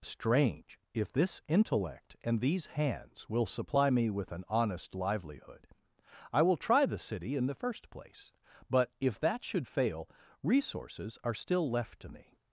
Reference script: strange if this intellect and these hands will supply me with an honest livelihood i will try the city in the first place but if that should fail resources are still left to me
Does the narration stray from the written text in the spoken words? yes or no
no